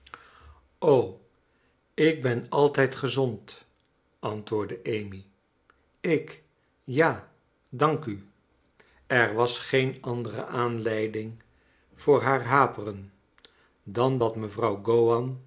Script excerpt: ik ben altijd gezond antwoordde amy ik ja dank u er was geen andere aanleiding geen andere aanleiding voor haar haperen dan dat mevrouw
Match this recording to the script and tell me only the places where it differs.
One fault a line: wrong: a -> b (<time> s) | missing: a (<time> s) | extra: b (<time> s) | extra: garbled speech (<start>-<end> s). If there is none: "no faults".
missing: geen andere aanleiding (11.4 s)